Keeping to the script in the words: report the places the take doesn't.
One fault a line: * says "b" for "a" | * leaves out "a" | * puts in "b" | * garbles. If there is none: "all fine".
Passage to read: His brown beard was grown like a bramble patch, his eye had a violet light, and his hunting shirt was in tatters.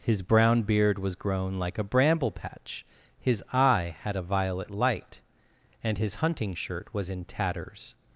all fine